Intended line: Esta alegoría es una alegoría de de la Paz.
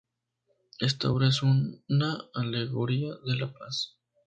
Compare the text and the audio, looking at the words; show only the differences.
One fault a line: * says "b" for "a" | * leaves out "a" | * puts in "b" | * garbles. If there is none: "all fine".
* says "obra" for "alegoría"
* leaves out "de"